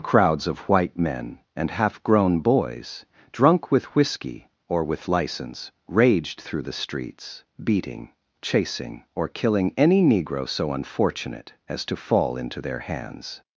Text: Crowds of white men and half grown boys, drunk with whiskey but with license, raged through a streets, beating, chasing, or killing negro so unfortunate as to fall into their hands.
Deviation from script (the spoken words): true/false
true